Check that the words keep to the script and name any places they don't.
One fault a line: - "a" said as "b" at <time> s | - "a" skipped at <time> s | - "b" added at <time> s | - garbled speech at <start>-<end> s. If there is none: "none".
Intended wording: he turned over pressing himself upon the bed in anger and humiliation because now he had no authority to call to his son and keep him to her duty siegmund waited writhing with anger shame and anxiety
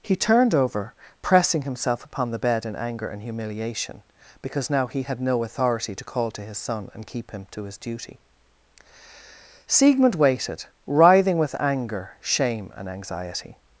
- "her" said as "his" at 7.6 s